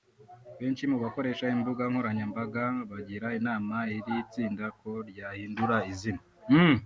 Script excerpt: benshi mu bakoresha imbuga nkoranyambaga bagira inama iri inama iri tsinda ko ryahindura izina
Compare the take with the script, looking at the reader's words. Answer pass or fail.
fail